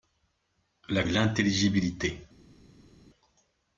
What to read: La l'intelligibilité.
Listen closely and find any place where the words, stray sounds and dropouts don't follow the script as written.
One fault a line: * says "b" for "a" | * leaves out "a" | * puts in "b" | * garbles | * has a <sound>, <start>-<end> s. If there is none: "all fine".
all fine